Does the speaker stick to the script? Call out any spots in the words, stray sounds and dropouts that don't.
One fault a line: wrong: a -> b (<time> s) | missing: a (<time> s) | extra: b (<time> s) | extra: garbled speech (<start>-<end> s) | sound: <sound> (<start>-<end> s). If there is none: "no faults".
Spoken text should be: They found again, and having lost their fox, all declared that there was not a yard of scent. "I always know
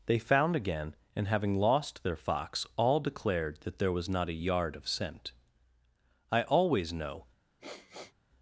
sound: sniff (7.6-8.1 s)